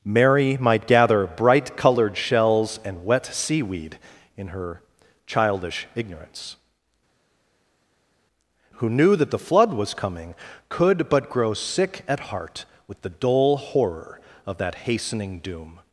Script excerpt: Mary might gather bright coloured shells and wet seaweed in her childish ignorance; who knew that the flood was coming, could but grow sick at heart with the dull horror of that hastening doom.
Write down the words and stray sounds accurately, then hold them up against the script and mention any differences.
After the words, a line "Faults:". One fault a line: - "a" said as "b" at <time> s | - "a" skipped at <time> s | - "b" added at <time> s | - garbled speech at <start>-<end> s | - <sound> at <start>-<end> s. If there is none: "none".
Mary might gather bright coloured shells and wet seaweed in her childish ignorance; who knew that the flood was coming, could but grow sick at heart with the dull horror of that hastening doom.
Faults:
none